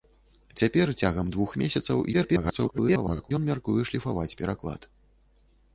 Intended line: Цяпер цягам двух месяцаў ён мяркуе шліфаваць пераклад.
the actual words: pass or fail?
fail